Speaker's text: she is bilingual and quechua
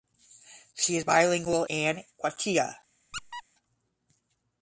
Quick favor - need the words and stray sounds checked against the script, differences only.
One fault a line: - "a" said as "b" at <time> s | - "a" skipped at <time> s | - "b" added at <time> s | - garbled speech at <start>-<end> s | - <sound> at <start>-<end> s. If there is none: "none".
- squeak at 3.1-3.4 s